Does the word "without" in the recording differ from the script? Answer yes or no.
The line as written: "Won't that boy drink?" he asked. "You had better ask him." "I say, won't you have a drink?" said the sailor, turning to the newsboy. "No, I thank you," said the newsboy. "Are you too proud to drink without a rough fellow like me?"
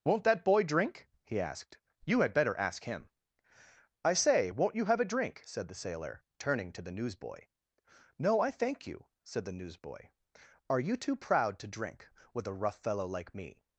yes